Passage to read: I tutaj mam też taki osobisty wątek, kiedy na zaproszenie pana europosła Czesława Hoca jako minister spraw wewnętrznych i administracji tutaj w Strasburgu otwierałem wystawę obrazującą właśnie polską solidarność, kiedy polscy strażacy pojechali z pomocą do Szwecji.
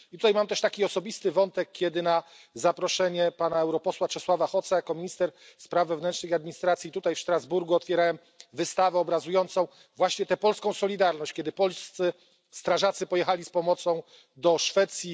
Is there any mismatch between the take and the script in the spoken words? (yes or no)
yes